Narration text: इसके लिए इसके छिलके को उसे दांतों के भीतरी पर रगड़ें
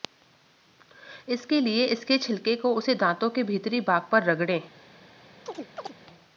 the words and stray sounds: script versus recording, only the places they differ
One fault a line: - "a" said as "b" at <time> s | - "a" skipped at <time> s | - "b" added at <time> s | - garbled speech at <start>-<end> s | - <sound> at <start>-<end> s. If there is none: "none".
- "भाग" added at 3.8 s
- chirp at 5.5-5.9 s